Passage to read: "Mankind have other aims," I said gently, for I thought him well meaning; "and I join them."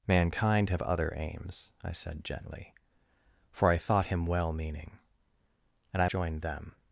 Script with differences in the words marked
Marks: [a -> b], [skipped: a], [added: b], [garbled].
"Mankind have other aims," I said gently, for I thought him well meaning; "and I join them."